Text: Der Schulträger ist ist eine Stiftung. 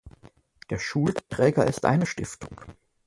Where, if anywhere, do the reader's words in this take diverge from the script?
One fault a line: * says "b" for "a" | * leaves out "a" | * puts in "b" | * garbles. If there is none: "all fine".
* leaves out "ist"